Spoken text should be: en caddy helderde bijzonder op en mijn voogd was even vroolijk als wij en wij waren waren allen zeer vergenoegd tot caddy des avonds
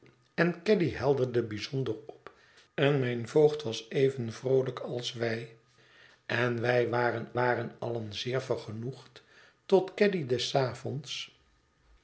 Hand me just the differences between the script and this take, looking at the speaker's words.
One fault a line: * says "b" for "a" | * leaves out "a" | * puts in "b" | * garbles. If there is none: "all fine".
all fine